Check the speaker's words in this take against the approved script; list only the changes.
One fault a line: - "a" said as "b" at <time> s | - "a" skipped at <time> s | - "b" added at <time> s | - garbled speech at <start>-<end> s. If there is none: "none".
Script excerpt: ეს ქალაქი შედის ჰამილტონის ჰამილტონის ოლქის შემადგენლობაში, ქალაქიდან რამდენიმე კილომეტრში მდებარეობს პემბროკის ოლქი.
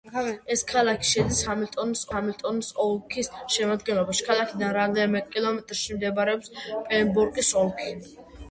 none